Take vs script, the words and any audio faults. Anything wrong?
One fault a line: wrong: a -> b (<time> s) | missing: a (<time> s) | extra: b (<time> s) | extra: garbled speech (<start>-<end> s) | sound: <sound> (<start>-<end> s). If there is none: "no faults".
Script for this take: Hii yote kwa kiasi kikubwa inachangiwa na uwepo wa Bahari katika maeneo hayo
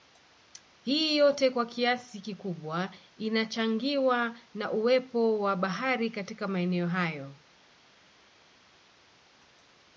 no faults